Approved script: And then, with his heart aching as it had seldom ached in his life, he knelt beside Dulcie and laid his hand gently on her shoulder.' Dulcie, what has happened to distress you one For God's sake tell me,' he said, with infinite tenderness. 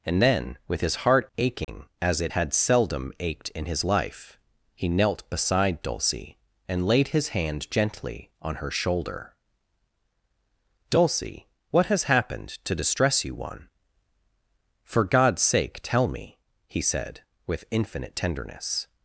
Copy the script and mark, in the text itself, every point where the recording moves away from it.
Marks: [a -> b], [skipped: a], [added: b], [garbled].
And then, with his heart aching as it had seldom ached in his life, he knelt beside Dulcie and laid his hand gently on her shoulder.' Dulcie, what has happened to distress you one For God's sake tell me,' he said, with infinite tenderness.